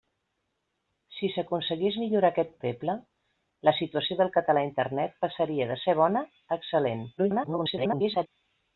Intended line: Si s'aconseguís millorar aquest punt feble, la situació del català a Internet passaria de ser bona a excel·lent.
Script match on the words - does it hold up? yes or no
no